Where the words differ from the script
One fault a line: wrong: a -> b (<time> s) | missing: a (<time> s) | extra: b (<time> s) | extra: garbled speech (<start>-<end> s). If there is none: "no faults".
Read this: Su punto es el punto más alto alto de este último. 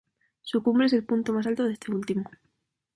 wrong: punto -> cumbre (0.6 s)
missing: alto (1.6 s)